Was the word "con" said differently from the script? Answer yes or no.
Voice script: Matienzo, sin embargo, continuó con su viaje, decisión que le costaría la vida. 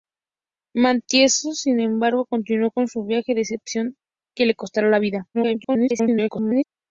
no